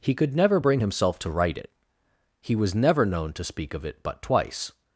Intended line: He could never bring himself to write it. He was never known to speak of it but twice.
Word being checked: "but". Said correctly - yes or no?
yes